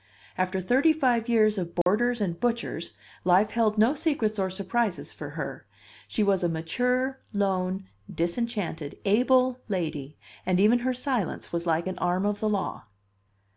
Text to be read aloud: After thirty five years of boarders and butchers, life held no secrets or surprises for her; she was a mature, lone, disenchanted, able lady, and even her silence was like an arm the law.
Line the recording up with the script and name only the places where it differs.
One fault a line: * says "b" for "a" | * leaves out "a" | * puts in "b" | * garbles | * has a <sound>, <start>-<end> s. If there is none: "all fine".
* has a dropout, 1.8-1.9 s
* puts in "of"